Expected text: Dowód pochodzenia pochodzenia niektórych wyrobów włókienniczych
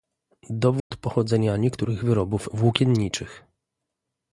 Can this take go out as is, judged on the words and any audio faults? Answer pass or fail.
fail